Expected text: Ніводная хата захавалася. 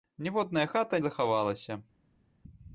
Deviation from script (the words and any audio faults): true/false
false